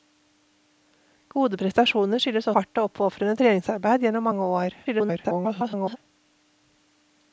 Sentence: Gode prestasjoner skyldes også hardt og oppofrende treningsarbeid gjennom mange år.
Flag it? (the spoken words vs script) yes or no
yes